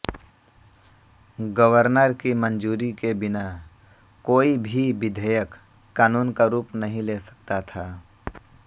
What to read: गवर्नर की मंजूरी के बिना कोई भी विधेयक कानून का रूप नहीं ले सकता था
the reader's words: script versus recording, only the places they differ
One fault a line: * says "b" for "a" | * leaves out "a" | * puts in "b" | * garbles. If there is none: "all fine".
all fine